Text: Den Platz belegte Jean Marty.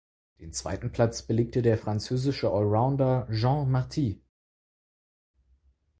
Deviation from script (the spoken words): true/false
true